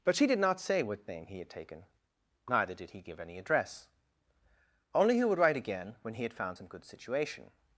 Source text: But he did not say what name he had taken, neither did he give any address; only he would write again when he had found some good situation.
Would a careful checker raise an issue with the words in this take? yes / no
yes